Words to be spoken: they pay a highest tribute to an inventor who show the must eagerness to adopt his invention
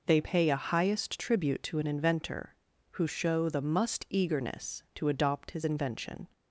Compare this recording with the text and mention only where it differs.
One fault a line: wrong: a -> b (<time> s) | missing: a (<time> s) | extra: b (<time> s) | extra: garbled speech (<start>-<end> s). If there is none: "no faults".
no faults